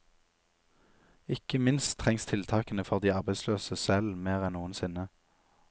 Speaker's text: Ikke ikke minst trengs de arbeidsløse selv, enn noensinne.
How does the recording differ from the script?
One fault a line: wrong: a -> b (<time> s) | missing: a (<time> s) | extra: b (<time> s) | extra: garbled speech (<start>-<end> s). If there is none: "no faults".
missing: ikke (1.6 s)
extra: tiltakene for (2.2 s)
extra: mer (4.2 s)